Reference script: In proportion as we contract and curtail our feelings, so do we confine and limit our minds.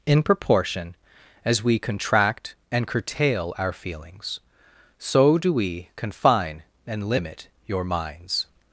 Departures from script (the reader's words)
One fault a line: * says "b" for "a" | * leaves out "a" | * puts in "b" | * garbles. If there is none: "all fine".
* says "your" for "our"